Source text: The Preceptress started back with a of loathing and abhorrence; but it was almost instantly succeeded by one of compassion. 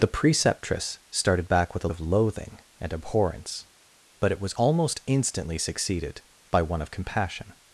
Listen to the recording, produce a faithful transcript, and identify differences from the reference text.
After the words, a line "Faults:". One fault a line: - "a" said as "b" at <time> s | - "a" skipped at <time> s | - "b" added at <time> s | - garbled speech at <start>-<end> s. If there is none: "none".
The Preceptress started back with a of loathing and abhorrence; but it was almost instantly succeeded by one of compassion.
Faults:
none